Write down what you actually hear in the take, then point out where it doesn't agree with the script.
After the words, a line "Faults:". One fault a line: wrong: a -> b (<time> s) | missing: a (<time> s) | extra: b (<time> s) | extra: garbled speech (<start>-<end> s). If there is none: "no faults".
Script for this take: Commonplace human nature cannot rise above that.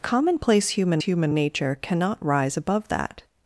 Commonplace human human nature cannot rise above that.
Faults:
extra: human (1.0 s)